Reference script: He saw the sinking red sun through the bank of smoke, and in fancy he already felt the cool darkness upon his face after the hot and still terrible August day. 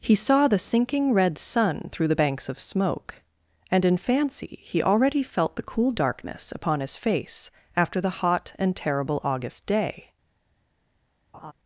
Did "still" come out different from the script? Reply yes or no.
yes